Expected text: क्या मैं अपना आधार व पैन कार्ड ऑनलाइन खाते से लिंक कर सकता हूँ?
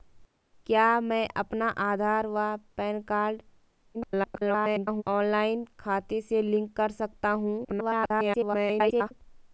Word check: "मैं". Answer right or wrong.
right